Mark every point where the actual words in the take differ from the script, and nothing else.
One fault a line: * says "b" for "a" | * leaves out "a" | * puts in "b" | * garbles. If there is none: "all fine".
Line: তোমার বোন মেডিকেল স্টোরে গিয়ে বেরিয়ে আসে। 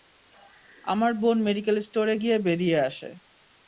* says "আমার" for "তোমার"